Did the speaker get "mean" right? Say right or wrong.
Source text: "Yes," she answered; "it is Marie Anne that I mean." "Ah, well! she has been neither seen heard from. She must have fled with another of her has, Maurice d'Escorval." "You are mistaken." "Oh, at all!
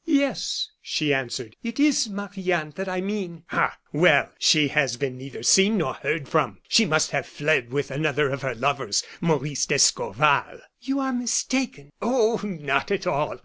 right